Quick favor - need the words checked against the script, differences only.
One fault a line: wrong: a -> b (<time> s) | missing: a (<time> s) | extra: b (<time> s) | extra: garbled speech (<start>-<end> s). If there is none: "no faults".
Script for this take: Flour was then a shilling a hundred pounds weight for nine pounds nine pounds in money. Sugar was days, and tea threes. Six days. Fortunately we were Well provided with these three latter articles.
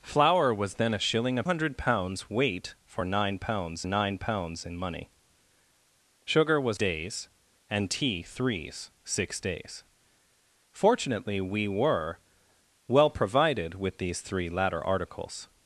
no faults